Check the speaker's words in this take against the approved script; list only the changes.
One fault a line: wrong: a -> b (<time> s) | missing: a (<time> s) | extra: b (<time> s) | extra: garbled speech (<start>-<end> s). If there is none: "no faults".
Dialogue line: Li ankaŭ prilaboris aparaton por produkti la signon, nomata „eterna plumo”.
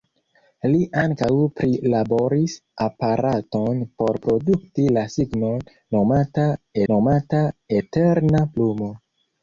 extra: nomata (6.9 s)